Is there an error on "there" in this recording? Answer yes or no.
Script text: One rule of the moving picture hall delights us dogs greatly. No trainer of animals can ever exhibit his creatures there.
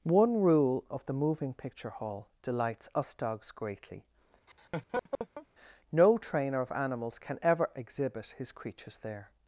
no